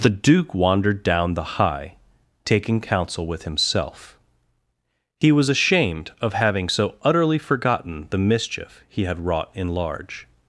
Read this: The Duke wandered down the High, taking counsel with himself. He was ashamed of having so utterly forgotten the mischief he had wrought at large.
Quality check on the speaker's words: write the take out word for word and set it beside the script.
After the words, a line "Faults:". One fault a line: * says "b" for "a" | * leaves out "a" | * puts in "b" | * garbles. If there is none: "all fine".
The Duke wandered down the High, taking counsel with himself. He was ashamed of having so utterly forgotten the mischief he had wrought in large.
Faults:
* says "in" for "at"